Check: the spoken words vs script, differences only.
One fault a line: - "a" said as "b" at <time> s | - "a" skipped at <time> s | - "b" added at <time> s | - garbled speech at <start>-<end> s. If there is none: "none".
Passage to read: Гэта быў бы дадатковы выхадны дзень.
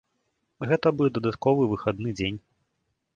- "быў" skipped at 0.9 s